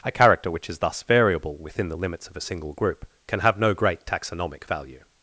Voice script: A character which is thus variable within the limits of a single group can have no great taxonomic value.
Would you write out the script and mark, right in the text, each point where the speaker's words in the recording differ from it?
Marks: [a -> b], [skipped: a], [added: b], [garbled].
A character which is thus variable within the limits of a single group can have no great taxonomic value.